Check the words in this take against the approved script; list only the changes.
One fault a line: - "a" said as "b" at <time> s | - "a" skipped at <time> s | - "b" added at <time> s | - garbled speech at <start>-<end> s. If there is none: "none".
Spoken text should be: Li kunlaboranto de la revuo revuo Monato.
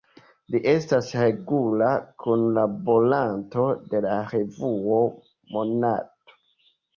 - "estas regula" added at 0.7 s
- "revuo" skipped at 5.0 s